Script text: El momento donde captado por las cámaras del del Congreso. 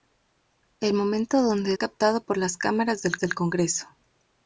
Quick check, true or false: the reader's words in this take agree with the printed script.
true